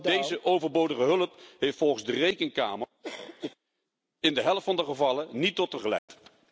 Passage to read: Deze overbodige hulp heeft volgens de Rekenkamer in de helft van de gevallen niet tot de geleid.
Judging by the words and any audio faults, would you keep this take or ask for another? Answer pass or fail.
fail